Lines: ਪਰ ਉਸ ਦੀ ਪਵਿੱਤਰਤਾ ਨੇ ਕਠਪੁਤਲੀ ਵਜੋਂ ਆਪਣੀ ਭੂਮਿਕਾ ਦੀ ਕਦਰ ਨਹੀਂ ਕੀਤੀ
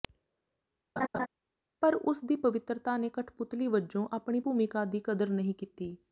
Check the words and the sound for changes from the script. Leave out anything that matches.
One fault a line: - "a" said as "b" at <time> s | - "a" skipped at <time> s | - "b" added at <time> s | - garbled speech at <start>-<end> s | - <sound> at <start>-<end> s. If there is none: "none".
- laugh at 1.0-1.3 s